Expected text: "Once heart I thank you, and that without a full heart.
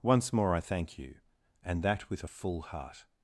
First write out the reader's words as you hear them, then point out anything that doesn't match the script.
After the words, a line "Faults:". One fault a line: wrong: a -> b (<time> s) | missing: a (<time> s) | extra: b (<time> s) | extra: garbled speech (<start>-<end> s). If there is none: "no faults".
"Once more I thank you, and that with a full heart.
Faults:
wrong: heart -> more (0.3 s)
wrong: without -> with (2.1 s)